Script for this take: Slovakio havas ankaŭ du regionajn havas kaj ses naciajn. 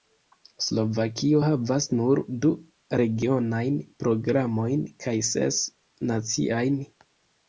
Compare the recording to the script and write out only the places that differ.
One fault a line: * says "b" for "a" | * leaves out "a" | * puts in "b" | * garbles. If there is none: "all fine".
* says "nur" for "ankaŭ"
* says "programojn" for "havas"